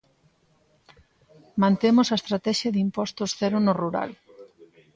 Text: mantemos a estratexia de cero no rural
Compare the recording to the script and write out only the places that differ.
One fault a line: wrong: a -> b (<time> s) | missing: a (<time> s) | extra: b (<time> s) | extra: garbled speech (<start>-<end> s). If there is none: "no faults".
extra: impostos (2.9 s)